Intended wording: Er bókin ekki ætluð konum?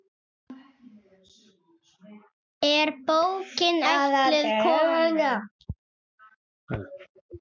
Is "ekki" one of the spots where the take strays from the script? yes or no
yes